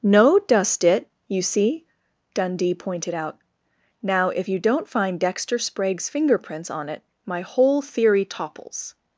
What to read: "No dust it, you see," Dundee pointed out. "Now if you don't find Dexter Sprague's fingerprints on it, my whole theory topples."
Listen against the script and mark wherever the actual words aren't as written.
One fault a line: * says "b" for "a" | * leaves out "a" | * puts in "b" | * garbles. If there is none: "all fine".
all fine